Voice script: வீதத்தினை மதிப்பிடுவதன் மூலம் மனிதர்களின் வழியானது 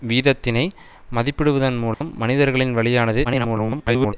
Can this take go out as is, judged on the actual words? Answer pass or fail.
fail